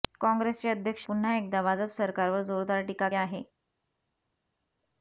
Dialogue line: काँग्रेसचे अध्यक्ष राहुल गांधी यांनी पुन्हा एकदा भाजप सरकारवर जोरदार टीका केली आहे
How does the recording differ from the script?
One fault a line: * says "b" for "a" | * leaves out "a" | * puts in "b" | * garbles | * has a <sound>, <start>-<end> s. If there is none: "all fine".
* leaves out "राहुल गांधी यांनी"
* leaves out "केली"